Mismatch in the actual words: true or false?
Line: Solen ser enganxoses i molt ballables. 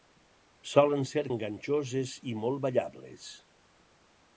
false